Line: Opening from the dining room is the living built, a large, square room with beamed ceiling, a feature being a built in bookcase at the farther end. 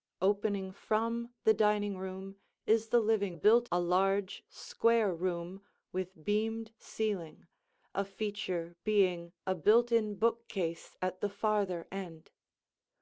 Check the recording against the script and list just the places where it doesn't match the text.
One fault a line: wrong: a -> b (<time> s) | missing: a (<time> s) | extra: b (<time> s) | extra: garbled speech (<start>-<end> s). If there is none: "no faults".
no faults